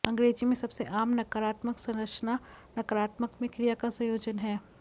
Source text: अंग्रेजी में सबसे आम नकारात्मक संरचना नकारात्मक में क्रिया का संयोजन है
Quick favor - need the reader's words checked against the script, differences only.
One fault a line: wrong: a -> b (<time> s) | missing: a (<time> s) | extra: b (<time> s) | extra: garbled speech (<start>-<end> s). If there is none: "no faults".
no faults